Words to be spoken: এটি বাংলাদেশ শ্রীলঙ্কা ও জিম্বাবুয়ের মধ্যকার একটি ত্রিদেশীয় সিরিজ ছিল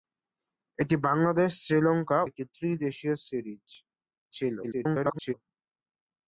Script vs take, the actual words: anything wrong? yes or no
yes